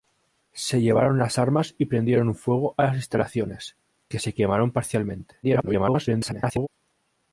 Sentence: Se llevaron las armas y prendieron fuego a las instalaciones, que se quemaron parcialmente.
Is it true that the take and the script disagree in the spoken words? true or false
true